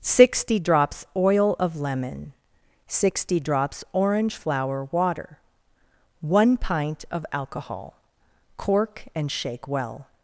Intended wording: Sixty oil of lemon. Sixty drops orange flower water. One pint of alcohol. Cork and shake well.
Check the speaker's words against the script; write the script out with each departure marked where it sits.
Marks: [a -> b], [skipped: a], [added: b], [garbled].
Sixty [added: drops] oil of lemon. Sixty drops orange flower water. One pint of alcohol. Cork and shake well.